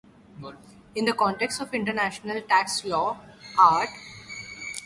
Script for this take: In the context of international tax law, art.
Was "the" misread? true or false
false